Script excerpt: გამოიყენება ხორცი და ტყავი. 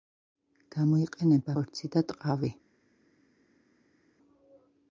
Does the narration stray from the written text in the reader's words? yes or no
no